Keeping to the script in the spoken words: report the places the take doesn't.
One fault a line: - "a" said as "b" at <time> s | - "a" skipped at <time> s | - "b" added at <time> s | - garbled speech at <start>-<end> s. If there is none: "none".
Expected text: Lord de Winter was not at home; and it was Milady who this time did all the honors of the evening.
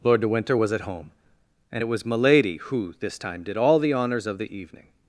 - "not" skipped at 0.7 s